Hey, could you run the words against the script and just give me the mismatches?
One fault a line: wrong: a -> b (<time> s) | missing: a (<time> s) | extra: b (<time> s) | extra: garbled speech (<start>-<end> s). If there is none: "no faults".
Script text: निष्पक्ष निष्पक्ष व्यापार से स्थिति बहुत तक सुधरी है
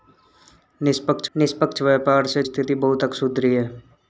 no faults